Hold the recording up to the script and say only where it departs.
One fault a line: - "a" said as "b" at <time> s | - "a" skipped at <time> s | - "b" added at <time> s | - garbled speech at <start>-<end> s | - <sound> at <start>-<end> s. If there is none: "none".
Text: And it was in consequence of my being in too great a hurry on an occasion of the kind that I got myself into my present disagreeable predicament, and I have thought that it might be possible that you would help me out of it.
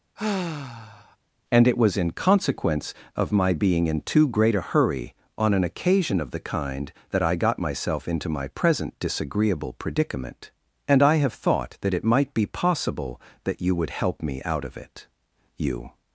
- sigh at 0.2-1.2 s
- "You" added at 15.6 s